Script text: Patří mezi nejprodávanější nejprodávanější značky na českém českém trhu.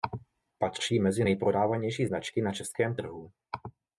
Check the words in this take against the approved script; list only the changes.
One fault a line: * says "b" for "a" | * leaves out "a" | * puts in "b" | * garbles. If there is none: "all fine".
* leaves out "nejprodávanější"
* leaves out "českém"